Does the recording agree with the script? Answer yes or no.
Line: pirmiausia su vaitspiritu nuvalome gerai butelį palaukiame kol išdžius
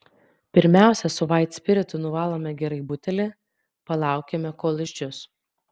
yes